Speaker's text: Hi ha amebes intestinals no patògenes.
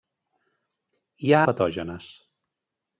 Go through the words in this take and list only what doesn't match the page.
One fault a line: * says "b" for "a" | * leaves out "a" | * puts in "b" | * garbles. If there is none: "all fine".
* leaves out "amebes intestinals no"